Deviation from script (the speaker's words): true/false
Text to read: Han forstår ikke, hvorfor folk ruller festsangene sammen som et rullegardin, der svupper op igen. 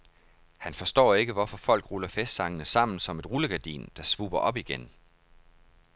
false